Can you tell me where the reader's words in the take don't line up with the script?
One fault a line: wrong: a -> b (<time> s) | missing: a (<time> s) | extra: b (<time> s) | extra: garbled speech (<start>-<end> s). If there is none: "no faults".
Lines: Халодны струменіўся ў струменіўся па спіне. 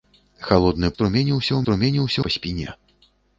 no faults